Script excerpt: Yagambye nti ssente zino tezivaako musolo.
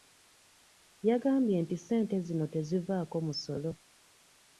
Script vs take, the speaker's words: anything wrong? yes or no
no